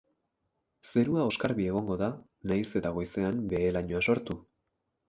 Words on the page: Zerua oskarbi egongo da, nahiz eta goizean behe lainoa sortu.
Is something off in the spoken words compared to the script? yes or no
no